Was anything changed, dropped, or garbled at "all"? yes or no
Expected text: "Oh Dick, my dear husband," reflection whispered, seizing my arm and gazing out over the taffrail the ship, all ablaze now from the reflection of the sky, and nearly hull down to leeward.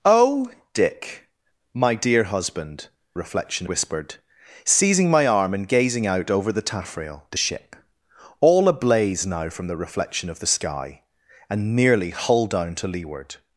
no